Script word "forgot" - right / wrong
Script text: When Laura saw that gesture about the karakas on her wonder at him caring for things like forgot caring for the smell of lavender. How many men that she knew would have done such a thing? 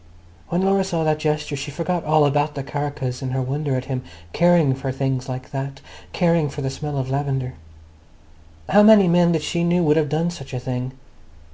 wrong